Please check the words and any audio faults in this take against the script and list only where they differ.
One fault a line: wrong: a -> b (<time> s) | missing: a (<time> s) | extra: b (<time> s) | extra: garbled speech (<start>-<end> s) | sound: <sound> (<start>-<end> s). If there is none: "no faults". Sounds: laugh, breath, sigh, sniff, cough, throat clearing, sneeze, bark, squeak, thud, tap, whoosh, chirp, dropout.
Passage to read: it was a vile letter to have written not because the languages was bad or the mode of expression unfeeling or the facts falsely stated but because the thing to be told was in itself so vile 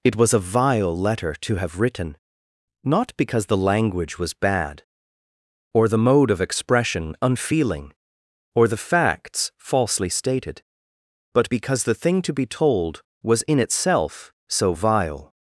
wrong: languages -> language (3.6 s)